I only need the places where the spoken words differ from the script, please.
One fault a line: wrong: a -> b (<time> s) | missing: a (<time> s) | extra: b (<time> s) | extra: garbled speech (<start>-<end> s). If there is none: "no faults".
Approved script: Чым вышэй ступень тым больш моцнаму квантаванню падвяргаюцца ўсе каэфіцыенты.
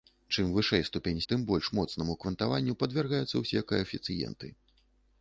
no faults